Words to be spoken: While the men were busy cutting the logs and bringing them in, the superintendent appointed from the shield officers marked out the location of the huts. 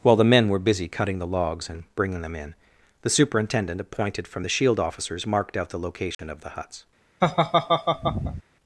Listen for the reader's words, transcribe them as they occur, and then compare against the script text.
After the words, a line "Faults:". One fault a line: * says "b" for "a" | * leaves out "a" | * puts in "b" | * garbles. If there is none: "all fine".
While the men were busy cutting the logs and bringing them in, the superintendent appointed from the shield officers marked out the location of the huts.
Faults:
all fine